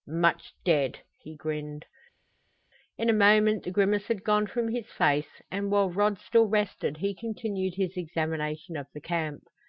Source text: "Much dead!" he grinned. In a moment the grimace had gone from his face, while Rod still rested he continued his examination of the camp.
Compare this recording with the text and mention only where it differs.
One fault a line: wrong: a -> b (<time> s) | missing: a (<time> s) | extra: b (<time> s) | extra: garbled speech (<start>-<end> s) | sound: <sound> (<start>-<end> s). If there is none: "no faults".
extra: and (5.5 s)